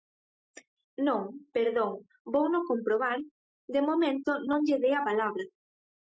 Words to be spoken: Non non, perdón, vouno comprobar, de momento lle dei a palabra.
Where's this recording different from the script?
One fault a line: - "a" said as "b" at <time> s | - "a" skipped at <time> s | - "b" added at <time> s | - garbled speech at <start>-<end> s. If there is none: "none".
- "non" skipped at 1.2 s
- "non" added at 4.5 s